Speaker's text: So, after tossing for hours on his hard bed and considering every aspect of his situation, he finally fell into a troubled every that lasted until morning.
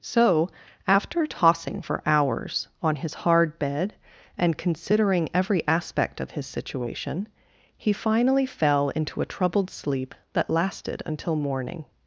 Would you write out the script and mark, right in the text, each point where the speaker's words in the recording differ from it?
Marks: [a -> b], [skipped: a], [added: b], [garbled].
So, after tossing for hours on his hard bed and considering every aspect of his situation, he finally fell into a troubled [every -> sleep] that lasted until morning.